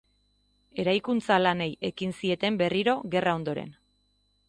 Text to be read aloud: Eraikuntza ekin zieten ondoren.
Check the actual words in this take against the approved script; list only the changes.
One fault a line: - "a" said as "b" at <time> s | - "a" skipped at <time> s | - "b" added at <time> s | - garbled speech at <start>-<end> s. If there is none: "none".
- "lanei" added at 1.4 s
- "berriro gerra" added at 2.6 s